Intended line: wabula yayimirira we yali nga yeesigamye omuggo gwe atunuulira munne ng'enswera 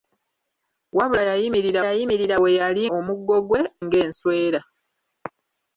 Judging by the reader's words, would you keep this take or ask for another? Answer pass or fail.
fail